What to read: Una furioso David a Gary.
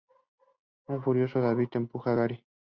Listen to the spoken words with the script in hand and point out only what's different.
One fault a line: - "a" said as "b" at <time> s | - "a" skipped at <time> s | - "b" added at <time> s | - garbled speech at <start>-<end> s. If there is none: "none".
- "Una" said as "Un" at 0.9 s
- "empuja" added at 1.7 s